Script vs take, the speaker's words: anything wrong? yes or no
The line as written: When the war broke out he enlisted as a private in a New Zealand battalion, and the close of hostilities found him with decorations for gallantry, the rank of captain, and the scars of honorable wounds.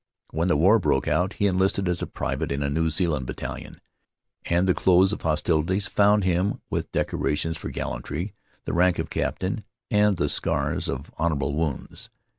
no